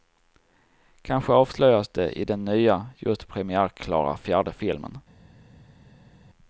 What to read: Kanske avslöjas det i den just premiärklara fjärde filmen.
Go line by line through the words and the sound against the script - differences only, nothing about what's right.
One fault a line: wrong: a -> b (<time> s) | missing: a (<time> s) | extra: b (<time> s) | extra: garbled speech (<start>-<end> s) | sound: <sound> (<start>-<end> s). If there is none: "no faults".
extra: nya (2.5 s)